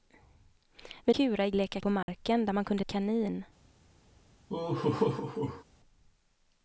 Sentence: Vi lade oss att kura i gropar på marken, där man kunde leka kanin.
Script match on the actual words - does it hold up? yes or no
no